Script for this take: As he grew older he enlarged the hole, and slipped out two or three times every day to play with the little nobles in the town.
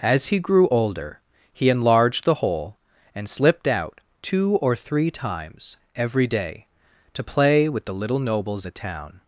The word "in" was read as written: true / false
false